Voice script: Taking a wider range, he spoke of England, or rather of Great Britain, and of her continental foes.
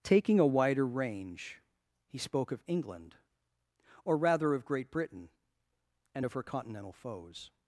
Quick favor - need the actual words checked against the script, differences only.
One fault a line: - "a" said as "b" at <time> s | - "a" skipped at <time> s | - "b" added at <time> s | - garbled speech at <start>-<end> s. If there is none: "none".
none